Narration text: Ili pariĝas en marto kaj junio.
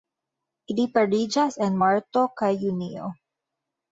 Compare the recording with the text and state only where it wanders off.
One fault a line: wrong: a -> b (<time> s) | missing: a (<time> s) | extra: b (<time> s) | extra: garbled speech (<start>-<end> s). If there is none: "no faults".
no faults